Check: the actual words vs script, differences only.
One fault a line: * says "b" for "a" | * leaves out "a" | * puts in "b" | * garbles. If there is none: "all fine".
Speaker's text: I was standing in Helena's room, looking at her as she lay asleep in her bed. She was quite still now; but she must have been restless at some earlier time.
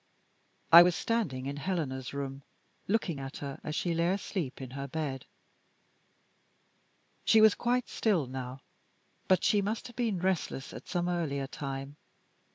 all fine